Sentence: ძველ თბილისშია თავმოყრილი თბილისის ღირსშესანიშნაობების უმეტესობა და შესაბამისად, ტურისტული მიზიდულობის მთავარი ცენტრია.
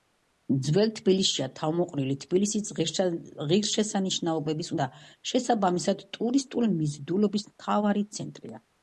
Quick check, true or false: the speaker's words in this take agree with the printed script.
false